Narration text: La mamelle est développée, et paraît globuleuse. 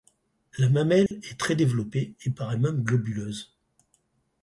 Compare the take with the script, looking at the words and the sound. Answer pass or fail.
fail